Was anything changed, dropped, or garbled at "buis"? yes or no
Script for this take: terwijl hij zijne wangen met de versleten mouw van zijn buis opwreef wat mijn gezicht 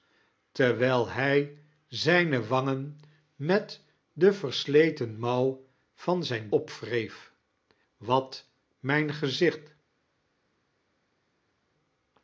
yes